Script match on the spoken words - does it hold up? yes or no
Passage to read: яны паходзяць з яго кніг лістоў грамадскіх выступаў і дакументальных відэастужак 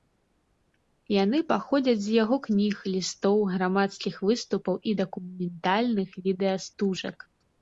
yes